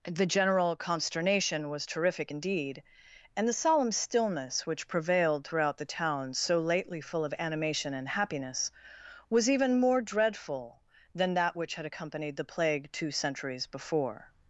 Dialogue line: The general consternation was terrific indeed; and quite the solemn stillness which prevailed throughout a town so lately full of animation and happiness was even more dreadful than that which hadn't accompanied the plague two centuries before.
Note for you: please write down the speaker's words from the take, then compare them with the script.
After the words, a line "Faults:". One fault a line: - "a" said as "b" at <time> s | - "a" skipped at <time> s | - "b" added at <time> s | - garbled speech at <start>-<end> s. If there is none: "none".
The general consternation was terrific indeed; and the solemn stillness which prevailed throughout the town so lately full of animation and happiness was even more dreadful than that which had accompanied the plague two centuries before.
Faults:
- "quite" skipped at 3.5 s
- "a" said as "the" at 5.8 s
- "hadn't" said as "had" at 11.7 s